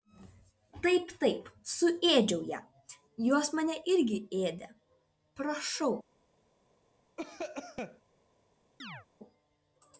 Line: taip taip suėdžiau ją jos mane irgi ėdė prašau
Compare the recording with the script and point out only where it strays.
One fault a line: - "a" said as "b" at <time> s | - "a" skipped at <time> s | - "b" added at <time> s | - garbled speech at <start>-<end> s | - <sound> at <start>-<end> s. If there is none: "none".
- cough at 7.2-8.0 s
- chirp at 8.8-9.1 s